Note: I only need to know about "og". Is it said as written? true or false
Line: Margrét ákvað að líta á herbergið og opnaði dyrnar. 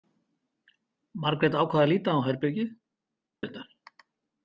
false